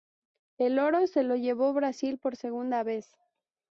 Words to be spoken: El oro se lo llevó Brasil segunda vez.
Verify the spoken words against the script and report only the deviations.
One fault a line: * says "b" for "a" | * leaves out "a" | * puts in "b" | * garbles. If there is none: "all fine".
* puts in "por"